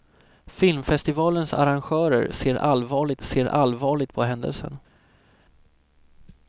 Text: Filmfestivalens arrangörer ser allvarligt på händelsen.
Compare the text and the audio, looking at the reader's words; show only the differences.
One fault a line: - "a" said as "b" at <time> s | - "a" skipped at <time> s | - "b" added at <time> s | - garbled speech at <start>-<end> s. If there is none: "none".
- "ser allvarligt" added at 3.2 s